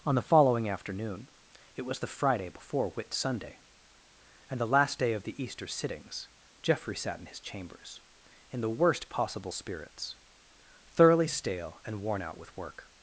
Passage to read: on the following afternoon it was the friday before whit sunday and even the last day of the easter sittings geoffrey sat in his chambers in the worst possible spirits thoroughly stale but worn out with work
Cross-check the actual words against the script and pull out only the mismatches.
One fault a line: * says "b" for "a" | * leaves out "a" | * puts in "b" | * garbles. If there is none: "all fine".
* leaves out "even"
* says "and" for "but"